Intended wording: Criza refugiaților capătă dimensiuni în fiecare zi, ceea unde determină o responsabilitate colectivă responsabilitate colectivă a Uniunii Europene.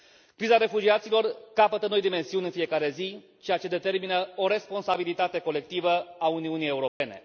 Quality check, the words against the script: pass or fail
fail